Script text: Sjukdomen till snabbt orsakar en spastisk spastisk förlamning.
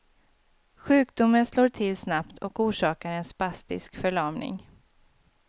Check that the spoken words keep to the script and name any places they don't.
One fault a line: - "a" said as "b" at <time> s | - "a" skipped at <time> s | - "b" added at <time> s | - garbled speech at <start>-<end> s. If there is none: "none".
- "slår" added at 1.4 s
- "och" added at 2.4 s
- "spastisk" skipped at 4.0 s